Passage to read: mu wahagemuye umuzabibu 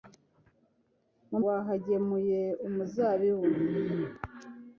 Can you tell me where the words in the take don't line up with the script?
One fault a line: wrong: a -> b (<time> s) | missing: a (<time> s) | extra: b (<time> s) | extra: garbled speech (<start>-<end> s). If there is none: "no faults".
no faults